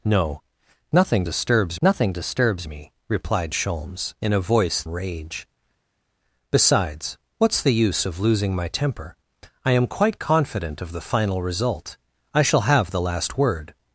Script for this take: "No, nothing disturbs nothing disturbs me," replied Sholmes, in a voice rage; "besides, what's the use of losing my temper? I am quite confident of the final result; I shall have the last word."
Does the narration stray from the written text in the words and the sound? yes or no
no